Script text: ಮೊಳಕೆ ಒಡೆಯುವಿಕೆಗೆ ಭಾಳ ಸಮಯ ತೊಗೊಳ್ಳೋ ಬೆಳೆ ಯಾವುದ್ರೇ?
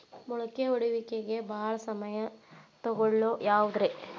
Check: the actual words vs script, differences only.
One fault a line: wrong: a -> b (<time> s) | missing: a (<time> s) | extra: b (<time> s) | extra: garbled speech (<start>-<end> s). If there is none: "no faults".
missing: ಬೆಳೆ (3.3 s)